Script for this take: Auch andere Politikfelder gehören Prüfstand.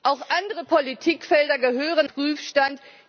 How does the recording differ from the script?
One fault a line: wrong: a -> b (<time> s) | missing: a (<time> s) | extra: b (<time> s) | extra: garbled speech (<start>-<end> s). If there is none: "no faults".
no faults